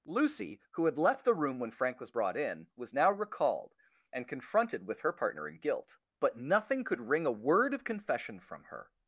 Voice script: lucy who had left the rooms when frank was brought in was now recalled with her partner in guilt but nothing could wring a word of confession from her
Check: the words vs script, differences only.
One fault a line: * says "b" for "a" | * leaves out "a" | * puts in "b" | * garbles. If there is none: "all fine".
* says "room" for "rooms"
* puts in "and confronted"